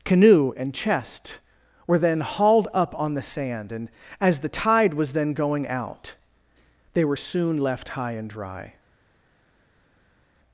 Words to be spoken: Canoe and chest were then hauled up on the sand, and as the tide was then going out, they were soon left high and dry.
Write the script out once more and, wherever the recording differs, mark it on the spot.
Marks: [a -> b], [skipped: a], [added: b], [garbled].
Canoe and chest were then hauled up on the sand, and as the tide was then going out, they were soon left high and dry.